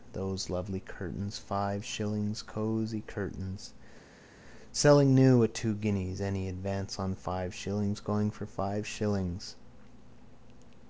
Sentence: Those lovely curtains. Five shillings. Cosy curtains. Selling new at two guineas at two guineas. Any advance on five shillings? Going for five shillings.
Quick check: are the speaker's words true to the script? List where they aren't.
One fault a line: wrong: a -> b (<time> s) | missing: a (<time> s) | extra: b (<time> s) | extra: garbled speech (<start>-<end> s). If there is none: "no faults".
missing: at two guineas (6.2 s)